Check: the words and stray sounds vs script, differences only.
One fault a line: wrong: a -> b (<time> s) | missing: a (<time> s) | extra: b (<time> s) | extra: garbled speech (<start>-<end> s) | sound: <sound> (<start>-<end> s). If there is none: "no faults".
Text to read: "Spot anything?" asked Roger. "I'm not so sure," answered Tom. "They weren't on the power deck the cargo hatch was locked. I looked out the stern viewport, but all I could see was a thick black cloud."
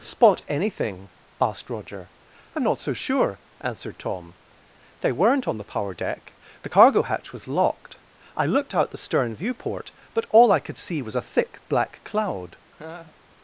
sound: laugh (12.7-13.2 s)